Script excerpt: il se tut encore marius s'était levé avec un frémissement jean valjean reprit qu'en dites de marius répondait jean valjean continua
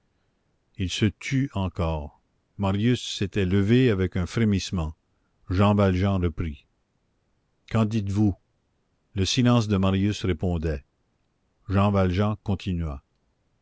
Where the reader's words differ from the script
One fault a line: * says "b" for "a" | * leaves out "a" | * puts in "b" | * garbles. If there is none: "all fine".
* puts in "vous le silence"